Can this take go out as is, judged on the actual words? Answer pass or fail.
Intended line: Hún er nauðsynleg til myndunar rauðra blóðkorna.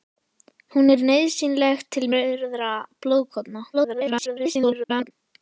fail